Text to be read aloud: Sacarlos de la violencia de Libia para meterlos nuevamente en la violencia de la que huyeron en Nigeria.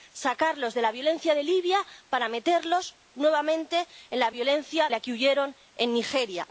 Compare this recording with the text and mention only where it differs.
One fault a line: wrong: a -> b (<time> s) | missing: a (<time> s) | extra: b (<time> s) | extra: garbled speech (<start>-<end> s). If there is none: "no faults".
missing: de (4.9 s)